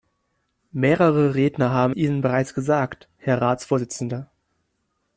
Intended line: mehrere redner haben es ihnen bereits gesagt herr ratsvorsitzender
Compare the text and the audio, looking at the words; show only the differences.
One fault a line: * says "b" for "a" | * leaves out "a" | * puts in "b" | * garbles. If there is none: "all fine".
* leaves out "es"